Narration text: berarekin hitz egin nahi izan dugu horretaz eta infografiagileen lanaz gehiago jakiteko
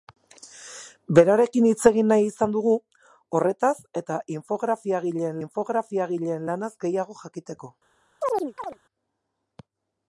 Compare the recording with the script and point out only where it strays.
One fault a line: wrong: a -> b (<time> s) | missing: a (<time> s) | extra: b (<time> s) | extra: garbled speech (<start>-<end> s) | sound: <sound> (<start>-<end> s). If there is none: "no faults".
extra: infografiagileen (5.5 s)
sound: chirp (8.2-8.8 s)